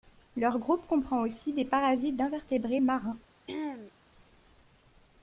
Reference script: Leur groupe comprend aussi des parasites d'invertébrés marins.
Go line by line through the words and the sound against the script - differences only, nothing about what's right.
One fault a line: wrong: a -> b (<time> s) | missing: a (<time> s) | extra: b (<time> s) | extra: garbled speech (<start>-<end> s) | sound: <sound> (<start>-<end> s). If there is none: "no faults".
sound: throat clearing (3.5-3.9 s)